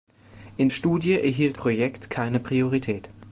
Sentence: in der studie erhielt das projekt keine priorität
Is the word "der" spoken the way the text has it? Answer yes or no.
no